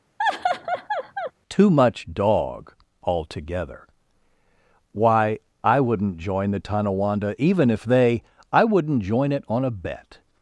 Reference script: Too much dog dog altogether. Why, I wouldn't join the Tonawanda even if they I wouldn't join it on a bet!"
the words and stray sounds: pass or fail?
fail